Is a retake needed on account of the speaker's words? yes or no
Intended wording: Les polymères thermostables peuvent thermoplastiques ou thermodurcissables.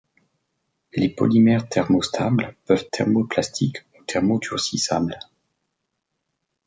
no